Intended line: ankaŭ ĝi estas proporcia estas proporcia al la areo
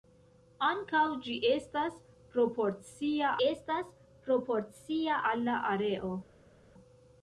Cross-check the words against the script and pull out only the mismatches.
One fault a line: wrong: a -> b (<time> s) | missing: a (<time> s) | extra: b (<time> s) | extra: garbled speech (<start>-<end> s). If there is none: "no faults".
no faults